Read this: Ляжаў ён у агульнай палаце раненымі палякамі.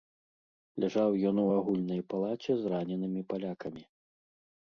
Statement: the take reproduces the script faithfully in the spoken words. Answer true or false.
false